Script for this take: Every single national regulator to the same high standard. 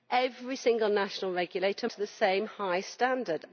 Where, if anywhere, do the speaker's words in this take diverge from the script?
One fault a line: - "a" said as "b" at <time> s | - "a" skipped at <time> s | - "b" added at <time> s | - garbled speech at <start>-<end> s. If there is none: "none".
none